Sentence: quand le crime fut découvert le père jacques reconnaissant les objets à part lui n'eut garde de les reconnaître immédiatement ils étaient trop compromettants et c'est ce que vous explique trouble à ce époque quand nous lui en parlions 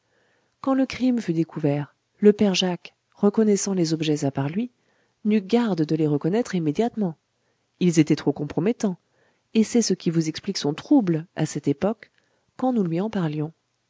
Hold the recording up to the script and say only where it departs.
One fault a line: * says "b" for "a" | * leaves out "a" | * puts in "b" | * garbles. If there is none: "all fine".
* says "qui" for "que"
* puts in "son"
* says "cette" for "ce"